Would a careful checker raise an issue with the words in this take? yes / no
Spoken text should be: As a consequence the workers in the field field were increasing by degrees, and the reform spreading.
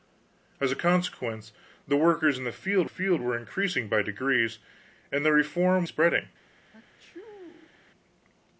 no